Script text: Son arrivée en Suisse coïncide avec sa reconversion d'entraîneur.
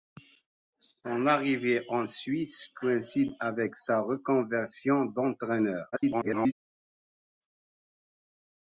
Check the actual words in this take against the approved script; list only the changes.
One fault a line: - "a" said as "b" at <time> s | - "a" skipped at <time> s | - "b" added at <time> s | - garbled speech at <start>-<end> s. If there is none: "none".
- garbled speech at 5.9-6.5 s